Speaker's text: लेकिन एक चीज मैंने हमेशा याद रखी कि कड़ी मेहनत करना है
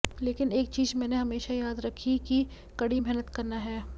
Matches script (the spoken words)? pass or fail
pass